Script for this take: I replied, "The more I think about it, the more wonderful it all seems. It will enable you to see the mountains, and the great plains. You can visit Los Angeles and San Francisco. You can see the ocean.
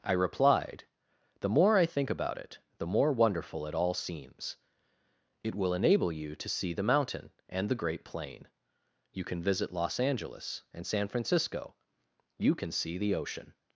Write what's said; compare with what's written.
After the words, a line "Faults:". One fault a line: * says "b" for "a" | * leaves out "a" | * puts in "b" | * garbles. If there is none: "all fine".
I replied, "The more I think about it, the more wonderful it all seems. It will enable you to see the mountain, and the great plain. You can visit Los Angeles and San Francisco. You can see the ocean.
Faults:
* says "mountain" for "mountains"
* says "plain" for "plains"